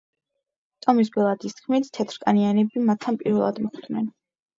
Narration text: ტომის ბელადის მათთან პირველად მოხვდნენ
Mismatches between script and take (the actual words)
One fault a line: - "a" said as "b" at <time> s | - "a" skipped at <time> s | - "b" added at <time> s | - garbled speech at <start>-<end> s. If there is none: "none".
- "თქმით თეთრკანიანები" added at 1.6 s